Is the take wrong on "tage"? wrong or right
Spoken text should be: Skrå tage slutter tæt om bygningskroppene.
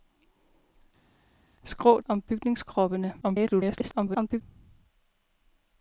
wrong